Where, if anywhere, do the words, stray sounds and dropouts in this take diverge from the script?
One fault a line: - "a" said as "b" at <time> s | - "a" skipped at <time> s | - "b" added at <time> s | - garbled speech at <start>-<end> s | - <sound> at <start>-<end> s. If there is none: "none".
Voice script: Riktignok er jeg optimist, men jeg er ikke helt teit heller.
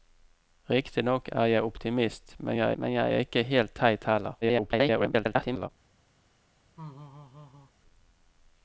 - "men jeg" added at 2.7 s
- garbled speech at 4.4-5.7 s
- laugh at 6.8-7.7 s